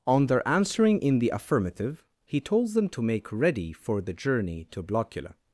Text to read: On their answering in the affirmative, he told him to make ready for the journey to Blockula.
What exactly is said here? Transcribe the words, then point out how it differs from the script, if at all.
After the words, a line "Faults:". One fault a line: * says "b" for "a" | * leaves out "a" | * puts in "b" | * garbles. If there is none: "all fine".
On their answering in the affirmative, he told them to make ready for the journey to Blockula.
Faults:
* says "them" for "him"